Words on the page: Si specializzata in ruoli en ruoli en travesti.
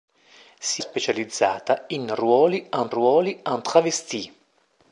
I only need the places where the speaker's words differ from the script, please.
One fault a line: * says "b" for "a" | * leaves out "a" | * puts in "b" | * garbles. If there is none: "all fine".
all fine